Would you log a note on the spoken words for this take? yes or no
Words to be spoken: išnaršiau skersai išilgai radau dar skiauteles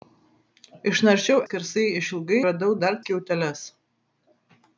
no